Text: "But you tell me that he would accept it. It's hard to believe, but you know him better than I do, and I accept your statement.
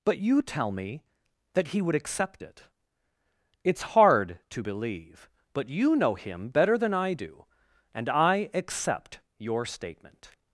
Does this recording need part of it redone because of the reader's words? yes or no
no